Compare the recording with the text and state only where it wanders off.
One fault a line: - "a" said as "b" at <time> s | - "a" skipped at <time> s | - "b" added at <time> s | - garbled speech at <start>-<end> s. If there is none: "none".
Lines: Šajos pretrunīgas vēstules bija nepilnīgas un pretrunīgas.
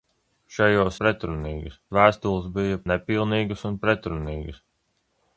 none